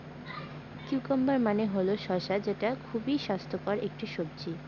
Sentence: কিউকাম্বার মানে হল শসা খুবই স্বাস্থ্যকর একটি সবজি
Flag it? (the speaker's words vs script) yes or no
yes